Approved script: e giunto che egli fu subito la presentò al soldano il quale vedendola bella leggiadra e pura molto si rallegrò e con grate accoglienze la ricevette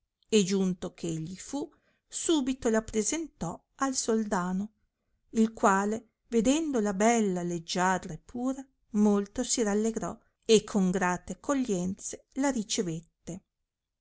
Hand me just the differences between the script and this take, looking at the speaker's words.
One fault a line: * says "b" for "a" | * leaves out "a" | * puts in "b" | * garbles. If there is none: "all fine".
all fine